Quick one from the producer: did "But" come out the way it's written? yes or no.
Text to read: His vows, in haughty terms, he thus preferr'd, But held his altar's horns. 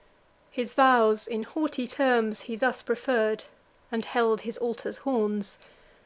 no